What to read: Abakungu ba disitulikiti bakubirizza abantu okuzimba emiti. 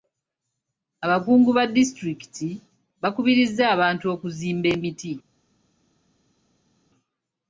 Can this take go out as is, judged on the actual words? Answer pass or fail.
pass